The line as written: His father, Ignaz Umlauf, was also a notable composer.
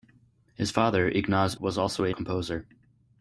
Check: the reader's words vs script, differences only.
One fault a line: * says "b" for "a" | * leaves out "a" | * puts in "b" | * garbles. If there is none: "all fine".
* leaves out "Umlauf"
* leaves out "notable"